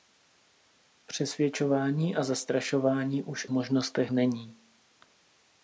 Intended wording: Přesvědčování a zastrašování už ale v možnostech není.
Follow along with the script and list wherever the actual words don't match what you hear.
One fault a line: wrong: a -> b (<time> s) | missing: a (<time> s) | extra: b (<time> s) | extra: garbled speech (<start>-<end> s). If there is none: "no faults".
missing: ale (3.5 s)